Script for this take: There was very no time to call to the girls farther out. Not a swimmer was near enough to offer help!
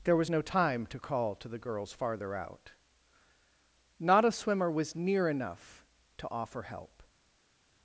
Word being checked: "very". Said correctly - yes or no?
no